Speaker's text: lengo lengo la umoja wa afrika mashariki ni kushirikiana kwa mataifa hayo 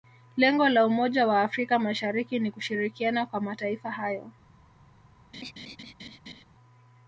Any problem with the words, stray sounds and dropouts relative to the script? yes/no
yes